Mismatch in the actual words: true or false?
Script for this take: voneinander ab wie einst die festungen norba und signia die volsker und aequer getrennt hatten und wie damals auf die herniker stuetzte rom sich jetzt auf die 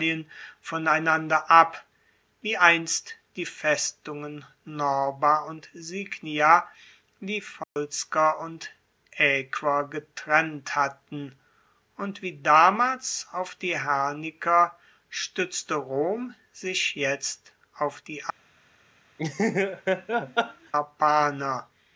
false